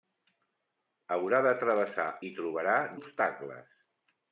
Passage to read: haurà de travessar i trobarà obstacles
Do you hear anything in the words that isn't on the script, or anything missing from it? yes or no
no